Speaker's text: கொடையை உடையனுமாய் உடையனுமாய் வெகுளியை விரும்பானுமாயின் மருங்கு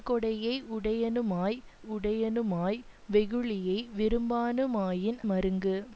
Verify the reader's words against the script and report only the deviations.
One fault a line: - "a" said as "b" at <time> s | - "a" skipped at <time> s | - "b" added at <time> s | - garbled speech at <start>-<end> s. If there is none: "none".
none